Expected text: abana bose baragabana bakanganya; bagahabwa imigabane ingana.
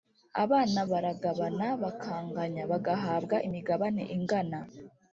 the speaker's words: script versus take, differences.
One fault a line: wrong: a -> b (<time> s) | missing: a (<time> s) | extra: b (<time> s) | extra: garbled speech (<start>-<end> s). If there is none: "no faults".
missing: bose (0.8 s)